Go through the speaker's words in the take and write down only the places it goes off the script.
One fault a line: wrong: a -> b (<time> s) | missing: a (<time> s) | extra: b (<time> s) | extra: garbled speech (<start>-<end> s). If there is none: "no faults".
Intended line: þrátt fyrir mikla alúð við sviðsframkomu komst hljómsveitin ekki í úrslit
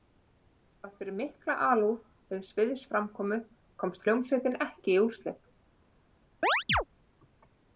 no faults